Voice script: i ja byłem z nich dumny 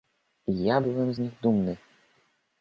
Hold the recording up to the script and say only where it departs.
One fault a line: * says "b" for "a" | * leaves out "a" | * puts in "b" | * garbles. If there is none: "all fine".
all fine